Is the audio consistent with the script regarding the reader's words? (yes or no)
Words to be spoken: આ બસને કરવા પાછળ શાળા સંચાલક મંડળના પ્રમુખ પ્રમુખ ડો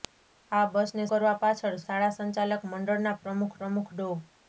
yes